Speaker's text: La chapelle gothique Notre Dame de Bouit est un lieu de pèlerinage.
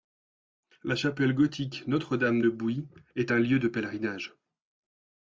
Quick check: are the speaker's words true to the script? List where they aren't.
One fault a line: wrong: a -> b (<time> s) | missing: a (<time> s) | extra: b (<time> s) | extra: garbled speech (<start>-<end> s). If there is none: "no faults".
no faults